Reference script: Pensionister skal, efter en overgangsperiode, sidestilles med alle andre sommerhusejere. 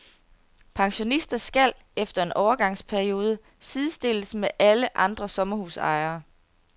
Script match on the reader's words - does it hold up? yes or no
yes